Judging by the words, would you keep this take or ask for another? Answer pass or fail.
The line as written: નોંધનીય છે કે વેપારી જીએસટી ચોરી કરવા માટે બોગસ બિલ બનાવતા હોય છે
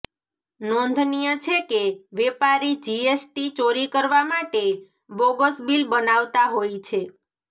pass